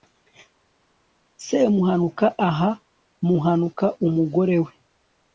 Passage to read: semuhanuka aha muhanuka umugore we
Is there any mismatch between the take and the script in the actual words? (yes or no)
no